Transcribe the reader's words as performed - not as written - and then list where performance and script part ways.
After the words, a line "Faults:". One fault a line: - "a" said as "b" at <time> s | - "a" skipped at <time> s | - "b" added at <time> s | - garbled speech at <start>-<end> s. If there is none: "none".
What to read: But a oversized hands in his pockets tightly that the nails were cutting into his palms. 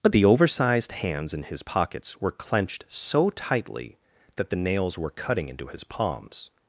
But the oversized hands in his pockets were clenched so tightly that the nails were cutting into his palms.
Faults:
- "a" said as "the" at 0.1 s
- "were clenched so" added at 2.2 s